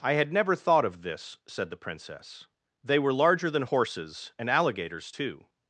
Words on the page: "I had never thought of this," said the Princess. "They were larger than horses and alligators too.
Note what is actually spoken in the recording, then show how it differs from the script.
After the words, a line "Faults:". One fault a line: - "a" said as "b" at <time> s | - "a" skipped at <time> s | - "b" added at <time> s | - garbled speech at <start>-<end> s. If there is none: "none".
"I had never thought of this," said the Princess. "They were larger than horses and alligators too.
Faults:
none